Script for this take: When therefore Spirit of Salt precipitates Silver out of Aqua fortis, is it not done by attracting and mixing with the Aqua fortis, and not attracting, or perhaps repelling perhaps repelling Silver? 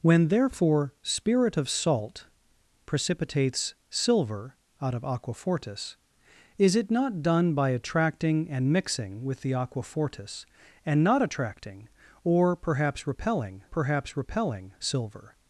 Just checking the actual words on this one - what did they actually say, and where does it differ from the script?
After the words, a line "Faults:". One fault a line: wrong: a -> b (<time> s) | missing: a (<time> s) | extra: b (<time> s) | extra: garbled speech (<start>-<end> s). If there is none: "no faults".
When therefore Spirit of Salt precipitates Silver out of Aqua fortis, is it not done by attracting and mixing with the Aqua fortis, and not attracting, or perhaps repelling perhaps repelling Silver?
Faults:
no faults